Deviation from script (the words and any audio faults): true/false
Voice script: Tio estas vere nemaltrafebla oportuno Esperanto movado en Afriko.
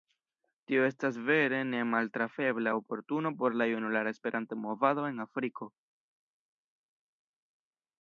true